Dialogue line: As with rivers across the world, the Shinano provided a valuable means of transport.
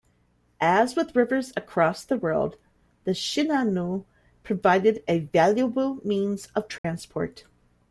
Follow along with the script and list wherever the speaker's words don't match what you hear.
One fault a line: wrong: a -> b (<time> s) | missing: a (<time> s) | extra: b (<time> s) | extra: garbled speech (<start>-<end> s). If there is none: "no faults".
no faults